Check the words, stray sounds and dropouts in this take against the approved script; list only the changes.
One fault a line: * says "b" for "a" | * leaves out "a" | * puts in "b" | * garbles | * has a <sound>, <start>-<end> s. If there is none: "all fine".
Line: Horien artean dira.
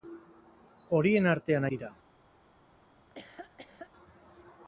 * has a laugh, 3.0-3.9 s